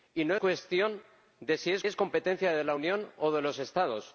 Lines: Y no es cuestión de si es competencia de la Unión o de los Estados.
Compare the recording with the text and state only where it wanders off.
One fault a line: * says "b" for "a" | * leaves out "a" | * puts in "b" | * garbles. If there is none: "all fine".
* leaves out "es"
* puts in "es"